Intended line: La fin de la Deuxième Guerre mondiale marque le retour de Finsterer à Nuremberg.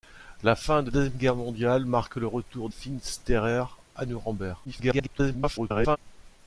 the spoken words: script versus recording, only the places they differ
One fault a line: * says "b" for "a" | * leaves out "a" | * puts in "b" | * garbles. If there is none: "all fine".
* leaves out "la"
* leaves out "de"
* garbles